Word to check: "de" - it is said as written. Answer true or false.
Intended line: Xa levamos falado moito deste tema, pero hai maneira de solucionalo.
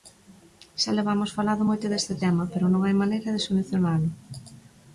true